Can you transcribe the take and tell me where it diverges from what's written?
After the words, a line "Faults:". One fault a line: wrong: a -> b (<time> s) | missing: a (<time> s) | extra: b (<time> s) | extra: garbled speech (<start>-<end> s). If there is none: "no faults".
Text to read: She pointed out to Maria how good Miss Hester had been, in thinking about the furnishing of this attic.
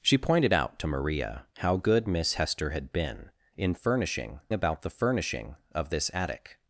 She pointed out to Maria how good Miss Hester had been, in furnishing about the furnishing of this attic.
Faults:
wrong: thinking -> furnishing (3.7 s)